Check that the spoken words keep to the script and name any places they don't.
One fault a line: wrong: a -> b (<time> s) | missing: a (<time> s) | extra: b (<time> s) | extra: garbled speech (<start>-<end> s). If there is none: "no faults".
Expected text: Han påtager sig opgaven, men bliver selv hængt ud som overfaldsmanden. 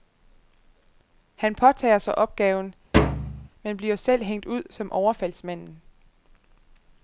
no faults